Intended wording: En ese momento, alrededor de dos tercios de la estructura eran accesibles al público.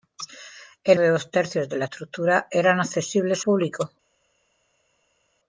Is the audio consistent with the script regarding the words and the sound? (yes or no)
no